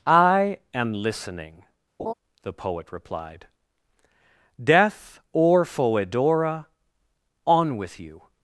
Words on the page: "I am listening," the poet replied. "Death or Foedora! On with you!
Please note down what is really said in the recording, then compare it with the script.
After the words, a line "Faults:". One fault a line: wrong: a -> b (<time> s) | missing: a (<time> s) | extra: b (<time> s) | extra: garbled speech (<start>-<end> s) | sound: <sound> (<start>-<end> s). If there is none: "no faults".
"I am listening," the poet replied. "Death or Foedora! On with you!
Faults:
sound: laugh (2.0-2.1 s)